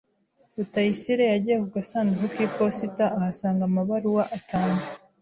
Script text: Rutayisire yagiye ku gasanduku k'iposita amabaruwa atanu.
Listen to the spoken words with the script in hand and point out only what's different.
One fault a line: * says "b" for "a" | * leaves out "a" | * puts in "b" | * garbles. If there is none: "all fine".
* puts in "ahasanga"